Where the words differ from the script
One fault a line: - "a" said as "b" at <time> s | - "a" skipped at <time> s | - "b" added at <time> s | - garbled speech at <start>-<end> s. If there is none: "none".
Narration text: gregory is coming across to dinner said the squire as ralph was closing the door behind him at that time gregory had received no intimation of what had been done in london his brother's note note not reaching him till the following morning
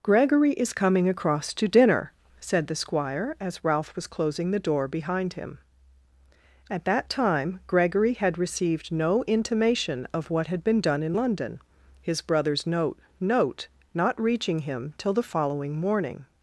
none